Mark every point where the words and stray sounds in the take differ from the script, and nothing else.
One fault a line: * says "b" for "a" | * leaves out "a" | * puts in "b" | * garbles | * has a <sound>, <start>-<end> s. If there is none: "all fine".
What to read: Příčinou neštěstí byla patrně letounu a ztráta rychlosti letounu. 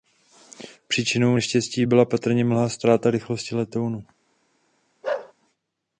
* says "mlha" for "letounu"
* has a bark, 5.0-5.3 s